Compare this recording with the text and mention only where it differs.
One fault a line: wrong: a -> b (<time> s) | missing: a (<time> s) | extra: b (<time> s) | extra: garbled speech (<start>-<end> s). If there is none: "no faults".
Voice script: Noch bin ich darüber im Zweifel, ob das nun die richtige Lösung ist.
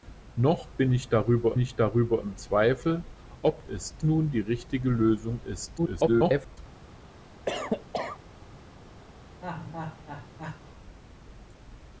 extra: ich darüber (1.6 s)
wrong: das -> ist (3.7 s)
extra: garbled speech (5.8-6.6 s)